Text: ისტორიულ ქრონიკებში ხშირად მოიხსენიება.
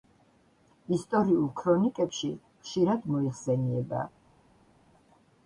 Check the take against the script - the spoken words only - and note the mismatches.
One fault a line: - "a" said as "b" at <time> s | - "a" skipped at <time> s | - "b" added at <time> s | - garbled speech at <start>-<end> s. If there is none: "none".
none